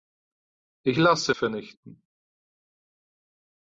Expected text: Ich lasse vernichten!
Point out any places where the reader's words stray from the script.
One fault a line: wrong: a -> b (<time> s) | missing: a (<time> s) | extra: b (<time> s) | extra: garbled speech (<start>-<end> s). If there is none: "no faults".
no faults